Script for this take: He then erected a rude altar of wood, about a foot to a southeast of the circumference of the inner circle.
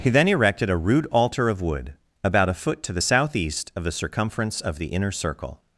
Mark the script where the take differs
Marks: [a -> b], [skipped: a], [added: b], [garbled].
He then erected a rude altar of wood, about a foot to [a -> the] southeast of the circumference of the inner circle.